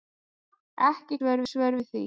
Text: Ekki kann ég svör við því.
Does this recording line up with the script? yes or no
no